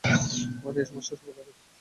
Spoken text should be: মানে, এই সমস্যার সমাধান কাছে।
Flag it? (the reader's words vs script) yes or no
no